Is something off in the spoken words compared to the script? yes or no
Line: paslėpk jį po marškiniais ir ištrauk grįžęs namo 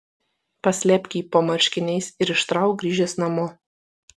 no